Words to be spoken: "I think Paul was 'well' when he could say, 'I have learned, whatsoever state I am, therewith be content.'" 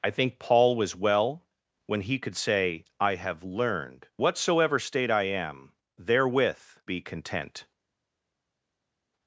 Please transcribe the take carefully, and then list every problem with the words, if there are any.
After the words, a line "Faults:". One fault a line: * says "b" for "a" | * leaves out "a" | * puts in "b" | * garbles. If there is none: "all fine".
"I think Paul was 'well' when he could say, 'I have learned, whatsoever state I am, therewith be content.'"
Faults:
all fine